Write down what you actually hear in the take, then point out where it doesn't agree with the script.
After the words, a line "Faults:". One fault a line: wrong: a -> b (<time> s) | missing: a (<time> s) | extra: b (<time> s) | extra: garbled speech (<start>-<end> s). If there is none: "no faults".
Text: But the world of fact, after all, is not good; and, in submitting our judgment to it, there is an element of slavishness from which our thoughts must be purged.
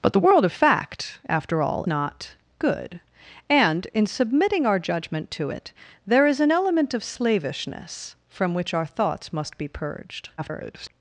But the world of fact, after all, not good; and, in submitting our judgment to it, there is an element of slavishness from which our thoughts must be purged. [garbled]
Faults:
missing: is (1.9 s)
extra: garbled speech (10.4-10.9 s)